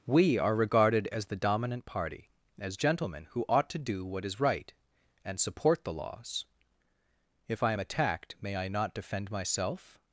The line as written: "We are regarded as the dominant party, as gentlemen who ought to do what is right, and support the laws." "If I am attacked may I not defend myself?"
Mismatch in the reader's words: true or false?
false